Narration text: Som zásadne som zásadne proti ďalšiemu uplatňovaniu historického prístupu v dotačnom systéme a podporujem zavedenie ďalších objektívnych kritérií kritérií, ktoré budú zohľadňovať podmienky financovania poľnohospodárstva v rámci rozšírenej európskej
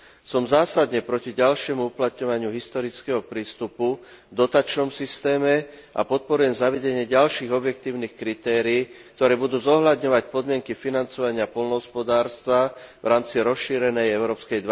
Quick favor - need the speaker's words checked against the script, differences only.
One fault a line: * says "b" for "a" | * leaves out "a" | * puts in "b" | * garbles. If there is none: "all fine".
* leaves out "som zásadne"
* leaves out "kritérií"